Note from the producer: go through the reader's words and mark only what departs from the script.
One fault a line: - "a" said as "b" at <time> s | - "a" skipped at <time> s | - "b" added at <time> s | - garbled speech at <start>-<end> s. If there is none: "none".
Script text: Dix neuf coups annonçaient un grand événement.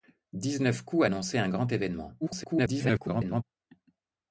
- garbled speech at 2.2-3.4 s